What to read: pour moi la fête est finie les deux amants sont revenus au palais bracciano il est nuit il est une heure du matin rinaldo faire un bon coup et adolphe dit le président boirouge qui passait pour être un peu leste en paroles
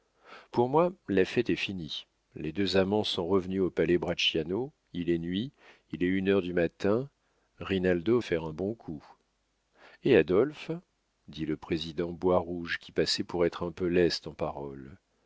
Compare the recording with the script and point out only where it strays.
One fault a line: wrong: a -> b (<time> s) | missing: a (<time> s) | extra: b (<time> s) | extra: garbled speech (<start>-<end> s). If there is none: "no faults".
no faults